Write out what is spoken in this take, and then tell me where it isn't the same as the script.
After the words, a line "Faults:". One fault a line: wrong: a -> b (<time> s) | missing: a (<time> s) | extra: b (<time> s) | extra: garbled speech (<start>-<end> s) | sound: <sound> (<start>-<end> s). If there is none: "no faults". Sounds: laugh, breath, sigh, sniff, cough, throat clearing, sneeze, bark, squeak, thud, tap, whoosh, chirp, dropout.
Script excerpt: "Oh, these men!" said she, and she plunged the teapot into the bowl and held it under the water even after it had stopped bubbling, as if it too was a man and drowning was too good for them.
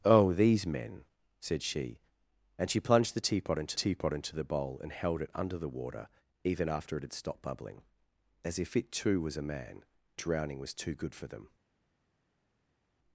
"Oh, these men!" said she, and she plunged the teapot into teapot into the bowl and held it under the water even after it had stopped bubbling, as if it too was a man drowning was too good for them.
Faults:
extra: teapot into (3.7 s)
missing: and (9.8 s)